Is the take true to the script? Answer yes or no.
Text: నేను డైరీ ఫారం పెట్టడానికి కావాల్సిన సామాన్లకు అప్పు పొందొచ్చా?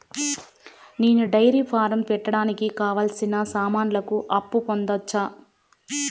yes